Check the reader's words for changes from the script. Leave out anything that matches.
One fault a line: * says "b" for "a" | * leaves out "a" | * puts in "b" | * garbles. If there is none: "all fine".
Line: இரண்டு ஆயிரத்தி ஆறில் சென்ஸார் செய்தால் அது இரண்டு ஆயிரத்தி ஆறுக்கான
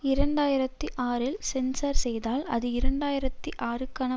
all fine